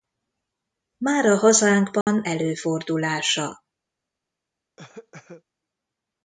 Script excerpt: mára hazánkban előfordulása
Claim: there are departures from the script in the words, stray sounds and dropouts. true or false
true